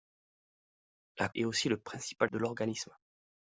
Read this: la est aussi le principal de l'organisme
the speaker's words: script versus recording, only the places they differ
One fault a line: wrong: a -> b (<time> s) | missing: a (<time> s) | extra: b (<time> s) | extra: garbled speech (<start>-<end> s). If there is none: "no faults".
no faults